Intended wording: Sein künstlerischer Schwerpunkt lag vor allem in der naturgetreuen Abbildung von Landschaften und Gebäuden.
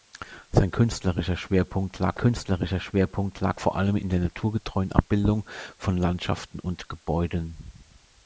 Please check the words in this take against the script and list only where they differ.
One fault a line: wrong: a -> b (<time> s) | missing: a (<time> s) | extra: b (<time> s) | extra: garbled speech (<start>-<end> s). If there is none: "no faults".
extra: künstlerischer Schwerpunkt lag (2.2 s)